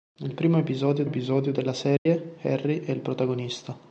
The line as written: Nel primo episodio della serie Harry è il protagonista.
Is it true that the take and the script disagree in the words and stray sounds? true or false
true